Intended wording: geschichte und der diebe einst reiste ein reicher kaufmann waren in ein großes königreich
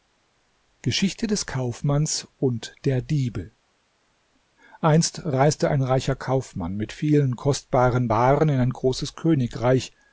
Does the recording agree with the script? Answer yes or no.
no